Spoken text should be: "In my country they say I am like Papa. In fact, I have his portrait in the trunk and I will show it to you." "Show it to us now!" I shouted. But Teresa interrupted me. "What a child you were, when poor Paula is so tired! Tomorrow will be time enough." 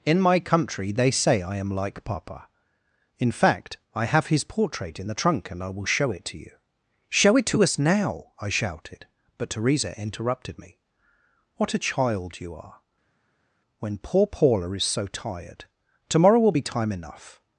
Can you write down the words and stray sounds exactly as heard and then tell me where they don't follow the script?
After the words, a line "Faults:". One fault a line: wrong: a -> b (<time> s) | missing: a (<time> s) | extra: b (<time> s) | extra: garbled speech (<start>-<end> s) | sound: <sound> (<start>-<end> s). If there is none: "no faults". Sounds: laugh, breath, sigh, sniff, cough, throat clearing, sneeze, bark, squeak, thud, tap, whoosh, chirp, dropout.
"In my country they say I am like Papa. In fact, I have his portrait in the trunk and I will show it to you." "Show it to us now!" I shouted. But Teresa interrupted me. "What a child you are, when poor Paula is so tired! Tomorrow will be time enough."
Faults:
wrong: were -> are (12.5 s)